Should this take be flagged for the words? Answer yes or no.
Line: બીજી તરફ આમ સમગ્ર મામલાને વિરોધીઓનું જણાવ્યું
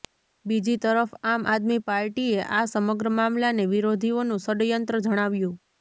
yes